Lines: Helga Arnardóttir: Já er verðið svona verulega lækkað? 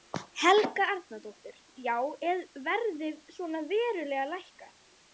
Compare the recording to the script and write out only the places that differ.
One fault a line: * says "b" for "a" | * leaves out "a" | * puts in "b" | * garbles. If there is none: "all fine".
all fine